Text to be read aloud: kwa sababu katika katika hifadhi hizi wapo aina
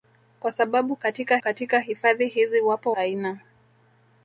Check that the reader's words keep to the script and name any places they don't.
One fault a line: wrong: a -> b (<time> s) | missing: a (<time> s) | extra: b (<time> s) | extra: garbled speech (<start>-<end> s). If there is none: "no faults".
no faults